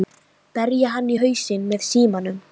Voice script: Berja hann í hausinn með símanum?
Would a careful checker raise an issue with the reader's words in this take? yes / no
no